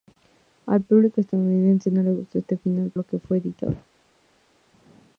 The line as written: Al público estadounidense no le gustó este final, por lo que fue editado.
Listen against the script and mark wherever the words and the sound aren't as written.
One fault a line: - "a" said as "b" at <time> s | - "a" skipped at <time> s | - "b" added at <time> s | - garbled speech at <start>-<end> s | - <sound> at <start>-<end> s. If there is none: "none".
- "por" skipped at 2.9 s